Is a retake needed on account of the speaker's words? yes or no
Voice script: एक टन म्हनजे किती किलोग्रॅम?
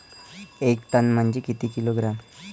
no